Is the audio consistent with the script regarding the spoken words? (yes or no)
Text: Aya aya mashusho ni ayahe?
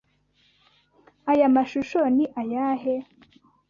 no